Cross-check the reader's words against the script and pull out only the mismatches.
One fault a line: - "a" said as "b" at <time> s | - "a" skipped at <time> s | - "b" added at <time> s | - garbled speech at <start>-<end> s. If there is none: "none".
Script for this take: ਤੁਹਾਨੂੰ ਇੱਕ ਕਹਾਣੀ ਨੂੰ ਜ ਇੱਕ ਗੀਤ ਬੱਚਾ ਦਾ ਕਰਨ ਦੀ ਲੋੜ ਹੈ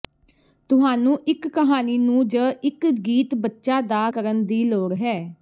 none